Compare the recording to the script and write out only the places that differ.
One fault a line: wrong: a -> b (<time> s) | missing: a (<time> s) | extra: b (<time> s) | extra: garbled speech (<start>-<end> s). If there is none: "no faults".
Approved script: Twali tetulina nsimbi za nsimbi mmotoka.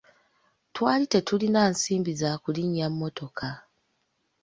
wrong: nsimbi -> kulinnya (2.4 s)